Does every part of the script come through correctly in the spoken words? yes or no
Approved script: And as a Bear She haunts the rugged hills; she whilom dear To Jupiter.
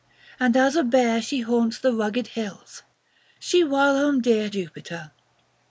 no